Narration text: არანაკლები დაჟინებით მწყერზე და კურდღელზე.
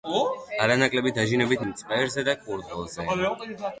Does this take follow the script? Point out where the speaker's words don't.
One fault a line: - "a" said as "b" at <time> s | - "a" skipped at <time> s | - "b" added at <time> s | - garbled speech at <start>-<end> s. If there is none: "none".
none